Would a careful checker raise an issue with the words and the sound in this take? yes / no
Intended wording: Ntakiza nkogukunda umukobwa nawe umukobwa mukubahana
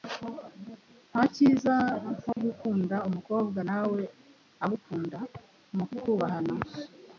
yes